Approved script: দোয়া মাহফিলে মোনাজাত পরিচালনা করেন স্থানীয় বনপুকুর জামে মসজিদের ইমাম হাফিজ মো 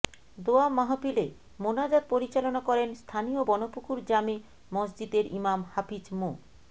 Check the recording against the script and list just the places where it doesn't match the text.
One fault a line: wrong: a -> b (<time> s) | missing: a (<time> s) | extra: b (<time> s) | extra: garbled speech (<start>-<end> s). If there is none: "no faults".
no faults